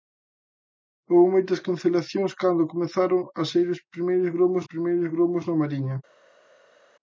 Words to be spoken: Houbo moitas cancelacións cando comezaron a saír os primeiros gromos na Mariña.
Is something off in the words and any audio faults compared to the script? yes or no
yes